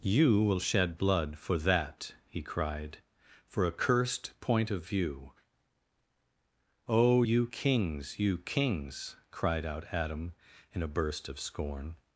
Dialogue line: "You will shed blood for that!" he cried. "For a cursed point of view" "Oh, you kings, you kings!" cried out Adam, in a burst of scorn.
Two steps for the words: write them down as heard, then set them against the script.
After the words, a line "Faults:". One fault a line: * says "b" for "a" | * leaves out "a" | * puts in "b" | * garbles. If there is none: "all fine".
"You will shed blood for that!" he cried. "For a cursed point of view" "Oh, you kings, you kings!" cried out Adam, in a burst of scorn.
Faults:
all fine